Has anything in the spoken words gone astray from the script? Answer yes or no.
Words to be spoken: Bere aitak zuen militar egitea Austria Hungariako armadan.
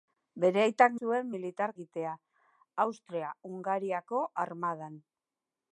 no